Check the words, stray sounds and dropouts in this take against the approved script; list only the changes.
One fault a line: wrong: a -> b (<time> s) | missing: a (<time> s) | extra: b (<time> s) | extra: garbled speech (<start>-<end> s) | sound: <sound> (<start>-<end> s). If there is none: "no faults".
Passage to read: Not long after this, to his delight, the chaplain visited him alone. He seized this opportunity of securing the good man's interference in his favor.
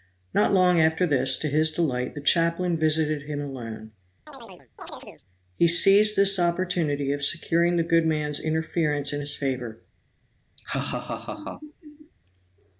sound: chirp (4.3-5.2 s)
sound: laugh (10.6-12.1 s)